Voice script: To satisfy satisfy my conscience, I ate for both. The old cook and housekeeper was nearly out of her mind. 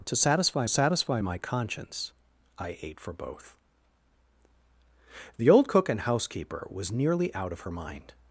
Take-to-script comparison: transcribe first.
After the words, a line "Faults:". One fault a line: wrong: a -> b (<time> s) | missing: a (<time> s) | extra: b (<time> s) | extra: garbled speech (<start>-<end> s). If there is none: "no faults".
To satisfy satisfy my conscience, I ate for both. The old cook and housekeeper was nearly out of her mind.
Faults:
no faults